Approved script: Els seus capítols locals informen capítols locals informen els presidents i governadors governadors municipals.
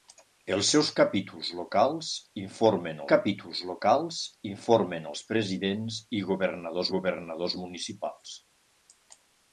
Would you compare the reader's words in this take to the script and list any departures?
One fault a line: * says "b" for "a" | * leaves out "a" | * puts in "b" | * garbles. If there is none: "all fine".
all fine